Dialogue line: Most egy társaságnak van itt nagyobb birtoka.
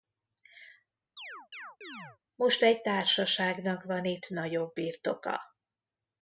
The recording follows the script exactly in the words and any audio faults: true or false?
false